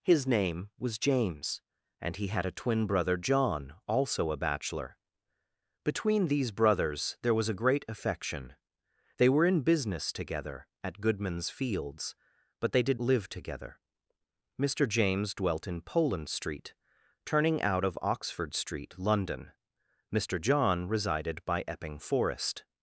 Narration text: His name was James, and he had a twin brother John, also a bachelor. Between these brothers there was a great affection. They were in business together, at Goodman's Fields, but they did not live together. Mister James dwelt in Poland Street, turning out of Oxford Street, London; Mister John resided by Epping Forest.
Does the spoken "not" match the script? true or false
false